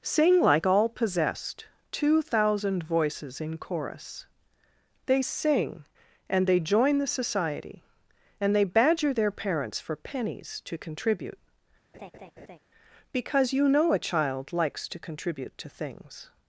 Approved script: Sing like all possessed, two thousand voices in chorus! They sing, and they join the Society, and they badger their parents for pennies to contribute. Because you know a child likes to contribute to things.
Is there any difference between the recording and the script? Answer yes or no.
no